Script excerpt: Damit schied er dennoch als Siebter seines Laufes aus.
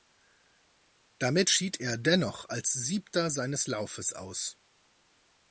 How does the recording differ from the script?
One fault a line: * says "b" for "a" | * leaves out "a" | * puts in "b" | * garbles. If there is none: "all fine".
all fine